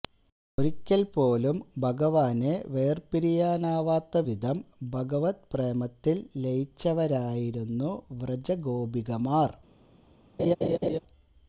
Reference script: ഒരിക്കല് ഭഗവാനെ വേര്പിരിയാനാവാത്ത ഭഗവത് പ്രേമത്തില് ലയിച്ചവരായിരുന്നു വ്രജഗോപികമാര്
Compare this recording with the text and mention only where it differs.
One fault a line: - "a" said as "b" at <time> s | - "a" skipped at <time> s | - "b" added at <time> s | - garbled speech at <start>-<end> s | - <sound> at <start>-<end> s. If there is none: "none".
- "പോലും" added at 1.1 s
- "വിധം" added at 4.3 s
- laugh at 10.4-11.0 s